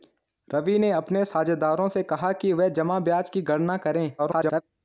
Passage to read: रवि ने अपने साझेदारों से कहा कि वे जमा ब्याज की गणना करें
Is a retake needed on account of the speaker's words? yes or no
yes